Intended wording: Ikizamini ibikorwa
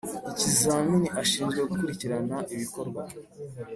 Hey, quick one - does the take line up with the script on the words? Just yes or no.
no